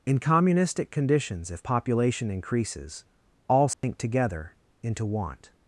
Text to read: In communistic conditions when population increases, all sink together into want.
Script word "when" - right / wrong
wrong